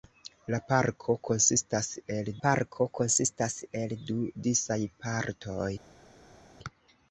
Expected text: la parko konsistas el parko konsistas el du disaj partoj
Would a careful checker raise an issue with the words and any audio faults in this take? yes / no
no